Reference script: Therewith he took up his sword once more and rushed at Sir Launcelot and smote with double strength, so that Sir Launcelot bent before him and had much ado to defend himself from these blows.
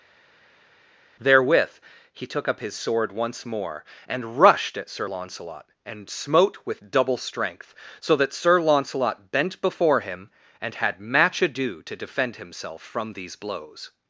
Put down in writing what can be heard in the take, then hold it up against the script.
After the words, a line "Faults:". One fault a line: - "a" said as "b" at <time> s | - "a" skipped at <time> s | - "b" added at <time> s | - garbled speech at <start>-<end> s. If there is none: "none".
Therewith he took up his sword once more and rushed at Sir Launcelot and smote with double strength, so that Sir Launcelot bent before him and had match ado to defend himself from these blows.
Faults:
- "much" said as "match" at 11.0 s